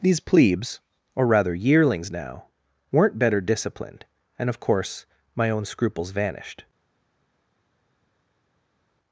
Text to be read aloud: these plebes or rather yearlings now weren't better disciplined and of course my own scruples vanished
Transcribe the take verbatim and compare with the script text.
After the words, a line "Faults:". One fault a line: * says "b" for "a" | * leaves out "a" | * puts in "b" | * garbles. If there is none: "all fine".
these plebes or rather yearlings now weren't better disciplined and of course my own scruples vanished
Faults:
all fine